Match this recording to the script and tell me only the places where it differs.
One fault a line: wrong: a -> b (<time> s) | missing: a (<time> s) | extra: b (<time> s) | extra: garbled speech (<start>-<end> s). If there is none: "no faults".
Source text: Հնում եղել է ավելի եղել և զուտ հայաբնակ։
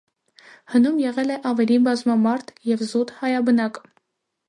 wrong: եղել -> բազմամարդ (1.9 s)